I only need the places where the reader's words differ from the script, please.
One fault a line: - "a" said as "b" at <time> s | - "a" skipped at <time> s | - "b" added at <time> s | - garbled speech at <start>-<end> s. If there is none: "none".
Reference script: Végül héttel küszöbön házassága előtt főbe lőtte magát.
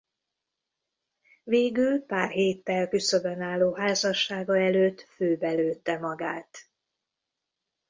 - "pár" added at 2.0 s
- "álló" added at 3.4 s